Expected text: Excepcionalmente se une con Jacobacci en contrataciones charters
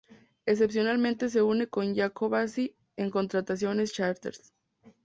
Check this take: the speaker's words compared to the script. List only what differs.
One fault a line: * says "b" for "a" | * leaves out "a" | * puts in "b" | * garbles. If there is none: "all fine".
all fine